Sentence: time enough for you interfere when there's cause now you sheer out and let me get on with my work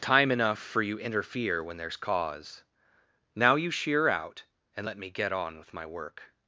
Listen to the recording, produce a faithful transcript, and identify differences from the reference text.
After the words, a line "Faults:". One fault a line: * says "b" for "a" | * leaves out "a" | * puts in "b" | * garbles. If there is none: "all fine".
time enough for you interfere when there's cause now you sheer out and let me get on with my work
Faults:
all fine